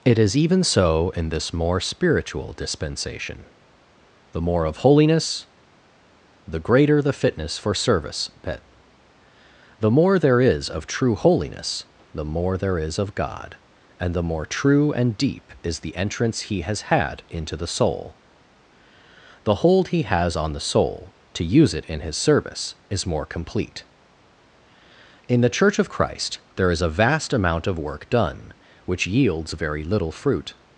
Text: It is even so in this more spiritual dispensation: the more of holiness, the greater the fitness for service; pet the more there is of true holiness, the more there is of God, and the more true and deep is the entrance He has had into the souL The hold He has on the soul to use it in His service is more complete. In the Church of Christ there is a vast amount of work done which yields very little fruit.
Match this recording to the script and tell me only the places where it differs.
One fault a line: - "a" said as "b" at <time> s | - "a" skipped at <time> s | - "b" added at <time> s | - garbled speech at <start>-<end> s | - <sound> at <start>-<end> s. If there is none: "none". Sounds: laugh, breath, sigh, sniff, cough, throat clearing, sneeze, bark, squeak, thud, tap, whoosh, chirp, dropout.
none